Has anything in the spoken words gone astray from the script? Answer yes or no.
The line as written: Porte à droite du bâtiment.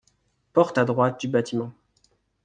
no